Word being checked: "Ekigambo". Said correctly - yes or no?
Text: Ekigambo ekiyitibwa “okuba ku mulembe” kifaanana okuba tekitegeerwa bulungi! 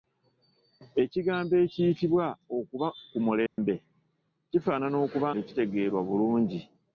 yes